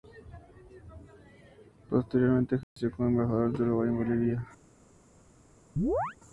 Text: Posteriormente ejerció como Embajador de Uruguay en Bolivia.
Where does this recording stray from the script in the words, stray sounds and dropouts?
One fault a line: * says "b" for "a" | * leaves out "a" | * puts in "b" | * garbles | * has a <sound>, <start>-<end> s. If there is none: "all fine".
* has a dropout, 2.6-2.8 s
* has a chirp, 5.8-6.2 s